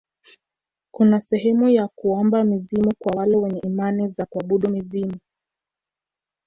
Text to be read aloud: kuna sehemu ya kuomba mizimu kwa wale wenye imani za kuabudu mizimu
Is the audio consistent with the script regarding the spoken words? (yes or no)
yes